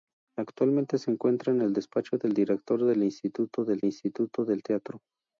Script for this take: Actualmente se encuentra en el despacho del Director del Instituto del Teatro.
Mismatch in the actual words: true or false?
true